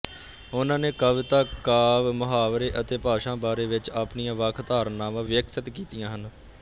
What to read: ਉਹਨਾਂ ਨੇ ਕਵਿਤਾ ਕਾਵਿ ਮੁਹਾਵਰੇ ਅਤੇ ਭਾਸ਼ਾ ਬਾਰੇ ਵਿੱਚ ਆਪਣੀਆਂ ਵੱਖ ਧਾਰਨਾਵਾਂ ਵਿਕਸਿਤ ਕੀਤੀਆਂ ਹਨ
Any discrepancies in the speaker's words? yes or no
no